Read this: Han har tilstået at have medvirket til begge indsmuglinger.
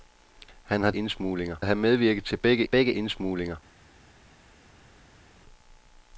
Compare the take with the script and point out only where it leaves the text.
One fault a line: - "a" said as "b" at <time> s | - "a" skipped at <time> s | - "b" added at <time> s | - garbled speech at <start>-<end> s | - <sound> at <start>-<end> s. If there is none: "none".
- "tilstået" said as "indsmuglinger" at 0.9 s
- "begge" added at 2.6 s